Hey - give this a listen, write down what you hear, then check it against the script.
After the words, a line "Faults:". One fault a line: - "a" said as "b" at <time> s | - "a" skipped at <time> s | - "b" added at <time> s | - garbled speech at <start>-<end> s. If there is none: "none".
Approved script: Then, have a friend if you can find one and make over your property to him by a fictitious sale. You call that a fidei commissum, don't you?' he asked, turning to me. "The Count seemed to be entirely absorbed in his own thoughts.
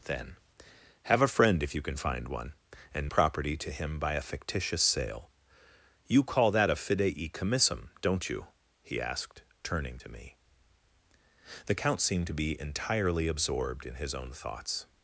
Then, have a friend if you can find one and property to him by a fictitious sale. You call that a fidei commissum, don't you?' he asked, turning to me. "The Count seemed to be entirely absorbed in his own thoughts.
Faults:
- "make over your" skipped at 3.1 s